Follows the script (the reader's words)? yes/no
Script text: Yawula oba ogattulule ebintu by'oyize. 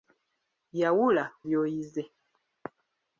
no